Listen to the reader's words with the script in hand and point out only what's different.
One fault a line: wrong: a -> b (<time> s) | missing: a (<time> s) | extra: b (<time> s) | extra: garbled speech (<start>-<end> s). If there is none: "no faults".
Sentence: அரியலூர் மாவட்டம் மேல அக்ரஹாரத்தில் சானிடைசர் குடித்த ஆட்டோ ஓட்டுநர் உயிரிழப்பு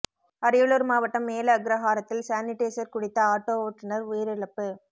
no faults